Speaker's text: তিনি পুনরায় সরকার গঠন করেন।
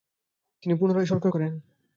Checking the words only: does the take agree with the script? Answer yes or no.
no